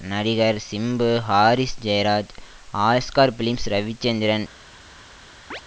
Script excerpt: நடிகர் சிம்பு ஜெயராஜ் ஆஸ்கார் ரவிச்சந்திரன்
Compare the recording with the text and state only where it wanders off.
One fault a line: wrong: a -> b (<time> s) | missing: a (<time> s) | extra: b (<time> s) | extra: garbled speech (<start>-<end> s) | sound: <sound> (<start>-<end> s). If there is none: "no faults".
extra: ஹாரிஸ் (1.2 s)
extra: பிலிம்ஸ் (3.4 s)
sound: chirp (5.5-5.6 s)